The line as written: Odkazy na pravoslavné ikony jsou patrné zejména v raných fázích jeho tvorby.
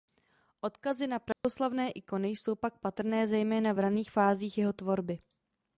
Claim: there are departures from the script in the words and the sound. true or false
true